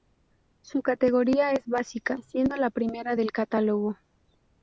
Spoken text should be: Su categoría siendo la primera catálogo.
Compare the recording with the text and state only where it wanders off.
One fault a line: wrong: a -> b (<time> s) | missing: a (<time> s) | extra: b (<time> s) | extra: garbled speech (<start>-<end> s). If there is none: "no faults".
extra: es básica (1.5 s)
extra: del (3.1 s)